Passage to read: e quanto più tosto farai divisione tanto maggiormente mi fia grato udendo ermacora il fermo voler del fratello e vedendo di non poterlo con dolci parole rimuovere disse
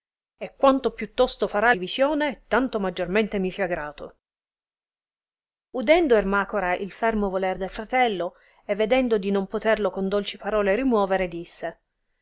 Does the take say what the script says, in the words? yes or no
yes